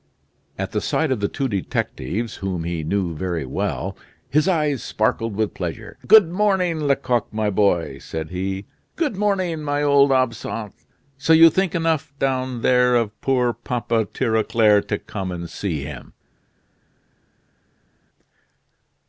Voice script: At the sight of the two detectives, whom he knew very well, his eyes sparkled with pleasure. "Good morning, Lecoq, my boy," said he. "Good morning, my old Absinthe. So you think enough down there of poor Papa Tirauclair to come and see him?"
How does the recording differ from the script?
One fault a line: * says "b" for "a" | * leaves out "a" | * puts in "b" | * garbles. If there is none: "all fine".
all fine